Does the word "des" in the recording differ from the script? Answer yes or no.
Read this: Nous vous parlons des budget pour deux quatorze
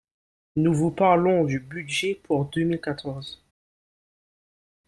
yes